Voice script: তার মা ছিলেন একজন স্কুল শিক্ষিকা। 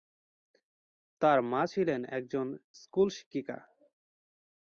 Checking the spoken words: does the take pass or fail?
pass